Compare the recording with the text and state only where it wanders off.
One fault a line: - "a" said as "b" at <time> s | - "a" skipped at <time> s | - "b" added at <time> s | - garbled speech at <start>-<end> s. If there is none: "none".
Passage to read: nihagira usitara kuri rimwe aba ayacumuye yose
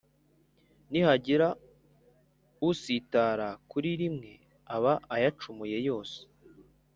none